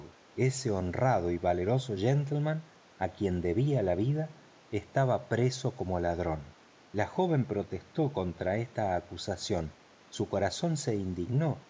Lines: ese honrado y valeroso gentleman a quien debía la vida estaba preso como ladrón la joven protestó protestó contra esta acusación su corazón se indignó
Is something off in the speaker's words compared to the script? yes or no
yes